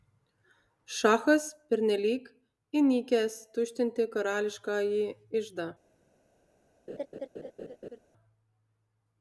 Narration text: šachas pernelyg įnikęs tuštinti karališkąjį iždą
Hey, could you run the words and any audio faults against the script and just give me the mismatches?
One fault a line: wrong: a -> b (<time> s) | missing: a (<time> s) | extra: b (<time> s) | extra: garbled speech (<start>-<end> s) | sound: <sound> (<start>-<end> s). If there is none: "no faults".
sound: laugh (6.9-8.0 s)